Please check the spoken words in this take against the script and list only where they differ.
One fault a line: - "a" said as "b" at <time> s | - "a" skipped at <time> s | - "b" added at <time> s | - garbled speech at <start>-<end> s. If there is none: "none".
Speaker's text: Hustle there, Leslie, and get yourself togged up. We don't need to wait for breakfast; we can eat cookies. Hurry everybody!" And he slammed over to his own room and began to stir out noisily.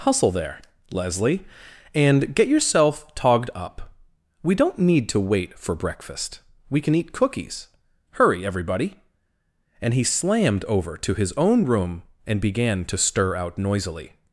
none